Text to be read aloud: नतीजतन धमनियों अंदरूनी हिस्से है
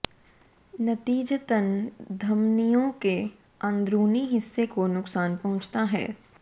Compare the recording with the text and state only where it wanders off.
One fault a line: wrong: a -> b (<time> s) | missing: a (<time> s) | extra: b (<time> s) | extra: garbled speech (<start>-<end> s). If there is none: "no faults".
extra: के (3.0 s)
extra: को नुकसान पहुंचता (4.7 s)